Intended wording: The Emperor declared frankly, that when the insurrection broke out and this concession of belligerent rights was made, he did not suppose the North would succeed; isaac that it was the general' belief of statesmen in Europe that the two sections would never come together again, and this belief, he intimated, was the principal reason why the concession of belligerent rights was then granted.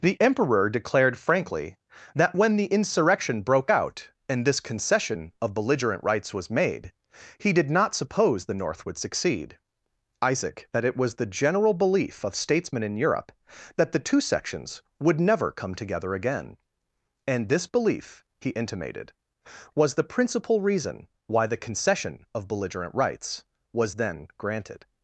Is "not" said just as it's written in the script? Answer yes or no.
yes